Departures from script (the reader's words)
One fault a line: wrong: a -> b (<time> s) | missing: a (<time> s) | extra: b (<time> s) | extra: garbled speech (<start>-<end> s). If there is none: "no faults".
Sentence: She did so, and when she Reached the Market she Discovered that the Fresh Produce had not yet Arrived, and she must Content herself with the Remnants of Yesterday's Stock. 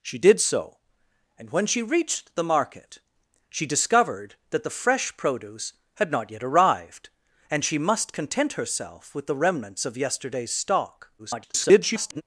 extra: garbled speech (11.2-12.2 s)